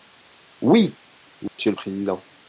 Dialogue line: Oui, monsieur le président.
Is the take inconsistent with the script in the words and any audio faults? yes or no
yes